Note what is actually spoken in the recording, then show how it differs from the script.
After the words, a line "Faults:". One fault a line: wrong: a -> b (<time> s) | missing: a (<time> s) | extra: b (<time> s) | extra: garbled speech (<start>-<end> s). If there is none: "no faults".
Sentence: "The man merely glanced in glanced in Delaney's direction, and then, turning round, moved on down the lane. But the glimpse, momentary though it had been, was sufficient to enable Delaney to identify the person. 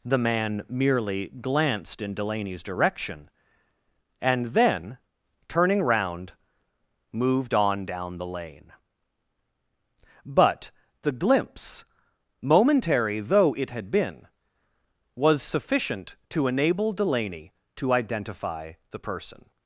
"The man merely glanced in Delaney's direction, and then, turning round, moved on down the lane. But the glimpse, momentary though it had been, was sufficient to enable Delaney to identify the person.
Faults:
missing: glanced in (2.1 s)